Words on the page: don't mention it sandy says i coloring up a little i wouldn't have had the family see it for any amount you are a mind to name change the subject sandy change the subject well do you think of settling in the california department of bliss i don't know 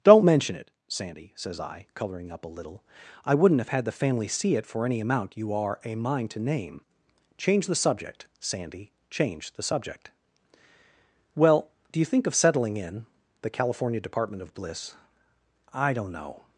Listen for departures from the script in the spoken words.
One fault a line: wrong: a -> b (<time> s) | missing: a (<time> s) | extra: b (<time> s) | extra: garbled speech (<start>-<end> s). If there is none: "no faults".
no faults